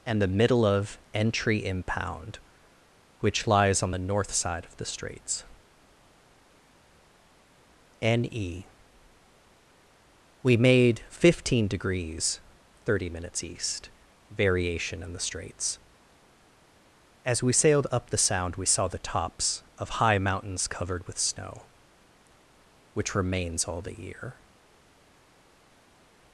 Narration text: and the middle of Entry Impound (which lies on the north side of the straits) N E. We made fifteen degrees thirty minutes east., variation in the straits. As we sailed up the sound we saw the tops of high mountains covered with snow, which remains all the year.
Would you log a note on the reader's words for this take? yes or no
no